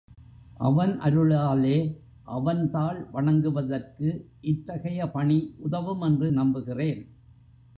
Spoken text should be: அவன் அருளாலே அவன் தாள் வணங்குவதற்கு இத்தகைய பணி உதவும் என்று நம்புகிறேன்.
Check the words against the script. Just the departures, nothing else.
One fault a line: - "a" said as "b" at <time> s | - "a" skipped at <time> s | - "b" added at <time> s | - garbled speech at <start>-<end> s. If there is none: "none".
none